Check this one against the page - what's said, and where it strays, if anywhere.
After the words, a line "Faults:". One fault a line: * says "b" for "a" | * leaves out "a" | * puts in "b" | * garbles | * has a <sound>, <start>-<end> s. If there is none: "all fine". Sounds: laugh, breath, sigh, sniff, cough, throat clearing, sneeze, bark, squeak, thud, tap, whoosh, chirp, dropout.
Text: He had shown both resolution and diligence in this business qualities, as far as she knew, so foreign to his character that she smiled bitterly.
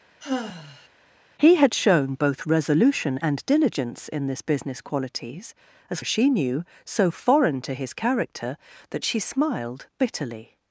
He had shown both resolution and diligence in this business qualities, as as she knew, so foreign to his character that she smiled bitterly.
Faults:
* has a sigh, 0.2-0.9 s
* leaves out "far"